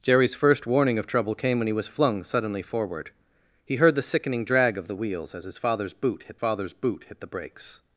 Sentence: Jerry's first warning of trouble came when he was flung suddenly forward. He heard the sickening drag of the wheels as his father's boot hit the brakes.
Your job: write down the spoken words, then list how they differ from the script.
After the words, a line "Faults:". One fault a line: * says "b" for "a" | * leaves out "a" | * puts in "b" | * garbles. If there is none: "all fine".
Jerry's first warning of trouble came when he was flung suddenly forward. He heard the sickening drag of the wheels as his father's boot hit father's boot hit the brakes.
Faults:
* puts in "father's boot hit"